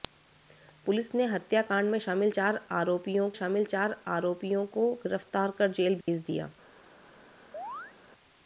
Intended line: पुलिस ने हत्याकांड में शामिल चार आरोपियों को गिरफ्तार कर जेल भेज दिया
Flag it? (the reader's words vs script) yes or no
yes